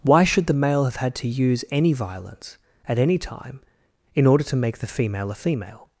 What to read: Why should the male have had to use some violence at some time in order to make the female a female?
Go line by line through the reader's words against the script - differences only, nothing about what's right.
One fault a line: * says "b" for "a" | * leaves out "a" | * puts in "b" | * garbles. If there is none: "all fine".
* says "any" for "some"
* says "any" for "some"